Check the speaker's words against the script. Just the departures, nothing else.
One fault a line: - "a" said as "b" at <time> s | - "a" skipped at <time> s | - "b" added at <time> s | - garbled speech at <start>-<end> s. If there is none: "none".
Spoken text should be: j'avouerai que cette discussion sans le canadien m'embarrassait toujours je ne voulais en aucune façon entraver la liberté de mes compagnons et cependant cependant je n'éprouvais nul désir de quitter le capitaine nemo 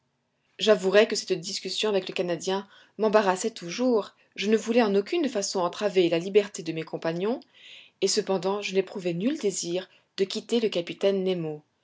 - "sans" said as "avec" at 1.9 s
- "cependant" skipped at 8.6 s